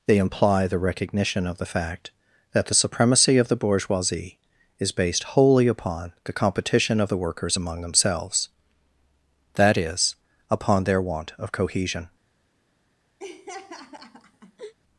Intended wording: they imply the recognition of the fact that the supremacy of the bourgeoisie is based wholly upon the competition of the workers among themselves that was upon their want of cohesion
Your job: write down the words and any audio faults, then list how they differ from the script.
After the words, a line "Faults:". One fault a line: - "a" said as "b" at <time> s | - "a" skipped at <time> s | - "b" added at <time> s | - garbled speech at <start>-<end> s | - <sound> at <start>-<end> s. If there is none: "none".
they imply the recognition of the fact that the supremacy of the bourgeoisie is based wholly upon the competition of the workers among themselves that is upon their want of cohesion
Faults:
- "was" said as "is" at 9.8 s
- laugh at 13.2-14.7 s